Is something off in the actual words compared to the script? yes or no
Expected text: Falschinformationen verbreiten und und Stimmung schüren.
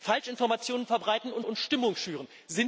no